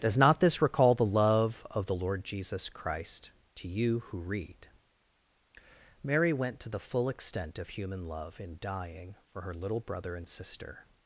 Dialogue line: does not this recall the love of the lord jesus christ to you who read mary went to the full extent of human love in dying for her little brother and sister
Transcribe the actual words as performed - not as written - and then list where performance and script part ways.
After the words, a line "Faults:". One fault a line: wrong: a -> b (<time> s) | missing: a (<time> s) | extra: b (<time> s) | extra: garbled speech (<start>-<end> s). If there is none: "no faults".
does not this recall the love of the lord jesus christ to you who read mary went to the full extent of human love in dying for her little brother and sister
Faults:
no faults